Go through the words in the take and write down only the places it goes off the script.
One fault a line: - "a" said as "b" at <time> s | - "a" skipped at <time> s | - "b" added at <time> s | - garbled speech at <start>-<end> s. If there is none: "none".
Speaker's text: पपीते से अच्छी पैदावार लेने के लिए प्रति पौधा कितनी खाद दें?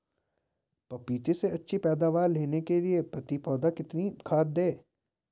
none